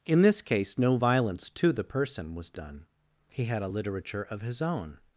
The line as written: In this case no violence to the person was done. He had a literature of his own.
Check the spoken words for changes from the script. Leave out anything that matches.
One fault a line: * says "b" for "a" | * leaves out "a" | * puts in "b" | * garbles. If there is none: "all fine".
all fine